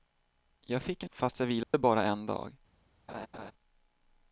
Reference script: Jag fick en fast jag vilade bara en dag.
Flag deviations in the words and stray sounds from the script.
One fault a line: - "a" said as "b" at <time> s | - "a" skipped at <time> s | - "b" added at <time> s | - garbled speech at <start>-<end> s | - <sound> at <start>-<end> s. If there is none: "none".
- dropout at 1.6-1.7 s
- laugh at 3.1-3.5 s